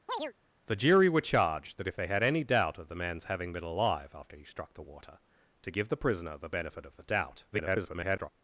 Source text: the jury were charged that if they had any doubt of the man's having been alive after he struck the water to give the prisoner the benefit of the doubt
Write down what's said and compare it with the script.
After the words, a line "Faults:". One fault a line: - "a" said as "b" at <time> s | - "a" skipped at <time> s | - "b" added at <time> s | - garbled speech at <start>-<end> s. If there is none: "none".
the jury were charged that if they had any doubt of the man's having been alive after he struck the water to give the prisoner the benefit of the doubt [garbled]
Faults:
- garbled speech at 7.5-8.3 s